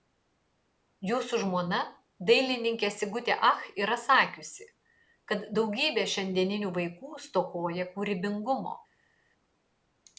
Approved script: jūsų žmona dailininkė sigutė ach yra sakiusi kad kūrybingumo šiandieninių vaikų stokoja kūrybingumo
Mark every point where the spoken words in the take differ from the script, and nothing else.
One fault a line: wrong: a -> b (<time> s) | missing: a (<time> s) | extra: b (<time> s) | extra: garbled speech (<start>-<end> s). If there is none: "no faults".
wrong: kūrybingumo -> daugybė (5.6 s)